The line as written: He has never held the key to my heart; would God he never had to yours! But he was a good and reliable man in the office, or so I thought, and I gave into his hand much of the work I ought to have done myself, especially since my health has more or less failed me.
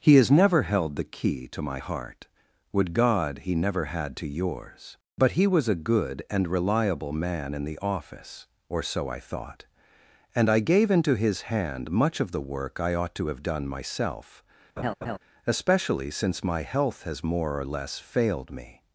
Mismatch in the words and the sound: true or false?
true